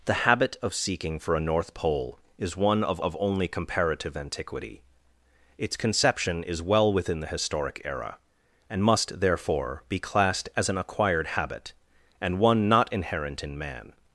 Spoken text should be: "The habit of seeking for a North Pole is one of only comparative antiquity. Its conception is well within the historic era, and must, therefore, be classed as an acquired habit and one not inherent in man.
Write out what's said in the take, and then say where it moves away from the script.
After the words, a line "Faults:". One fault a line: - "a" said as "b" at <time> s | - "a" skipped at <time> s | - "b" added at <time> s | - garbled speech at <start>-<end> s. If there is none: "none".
"The habit of seeking for a North Pole is one of of only comparative antiquity. Its conception is well within the historic era, and must, therefore, be classed as an acquired habit and one not inherent in man.
Faults:
- "of" added at 3.0 s